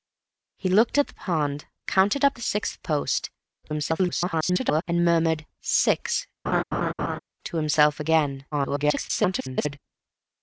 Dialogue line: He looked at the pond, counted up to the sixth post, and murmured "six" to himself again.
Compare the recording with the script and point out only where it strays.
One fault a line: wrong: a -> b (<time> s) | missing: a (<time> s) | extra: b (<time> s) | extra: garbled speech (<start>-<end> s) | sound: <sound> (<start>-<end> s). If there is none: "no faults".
missing: to (2.4 s)
extra: garbled speech (3.6-4.8 s)
sound: laugh (6.5-7.2 s)
extra: garbled speech (8.5-9.8 s)